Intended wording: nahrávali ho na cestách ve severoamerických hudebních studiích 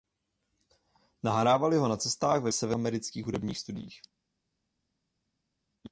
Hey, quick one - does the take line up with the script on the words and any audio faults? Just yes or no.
yes